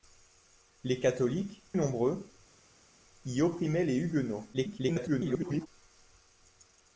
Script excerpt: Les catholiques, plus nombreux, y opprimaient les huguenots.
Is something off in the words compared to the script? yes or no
yes